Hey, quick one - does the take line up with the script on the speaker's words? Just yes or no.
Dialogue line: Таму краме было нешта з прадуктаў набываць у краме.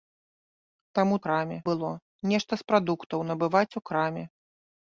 yes